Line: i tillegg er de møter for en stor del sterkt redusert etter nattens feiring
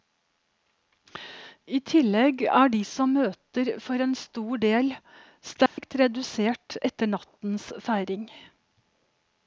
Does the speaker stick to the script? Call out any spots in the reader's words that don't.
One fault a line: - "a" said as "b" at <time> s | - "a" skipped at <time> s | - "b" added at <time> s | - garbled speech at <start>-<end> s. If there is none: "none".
- "som" added at 2.9 s